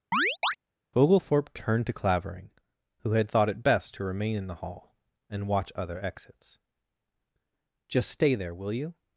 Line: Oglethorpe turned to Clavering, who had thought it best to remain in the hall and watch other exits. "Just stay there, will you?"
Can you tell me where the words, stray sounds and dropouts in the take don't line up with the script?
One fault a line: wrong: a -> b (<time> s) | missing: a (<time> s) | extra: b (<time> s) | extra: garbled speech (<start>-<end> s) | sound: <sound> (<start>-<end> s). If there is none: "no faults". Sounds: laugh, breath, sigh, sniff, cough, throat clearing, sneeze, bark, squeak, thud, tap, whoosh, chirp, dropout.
sound: chirp (0.1-0.6 s)